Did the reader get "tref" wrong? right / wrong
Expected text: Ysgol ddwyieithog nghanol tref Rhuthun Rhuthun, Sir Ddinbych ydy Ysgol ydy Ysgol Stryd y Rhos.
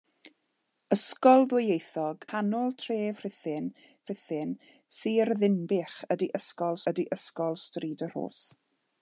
right